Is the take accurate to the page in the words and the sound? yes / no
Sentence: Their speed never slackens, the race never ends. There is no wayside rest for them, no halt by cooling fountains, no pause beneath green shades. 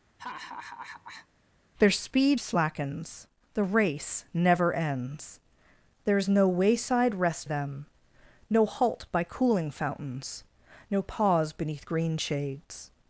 no